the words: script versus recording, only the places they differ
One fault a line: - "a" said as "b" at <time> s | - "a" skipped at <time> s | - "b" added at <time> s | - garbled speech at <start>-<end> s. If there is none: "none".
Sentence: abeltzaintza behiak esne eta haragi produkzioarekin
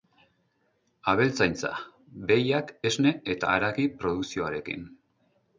none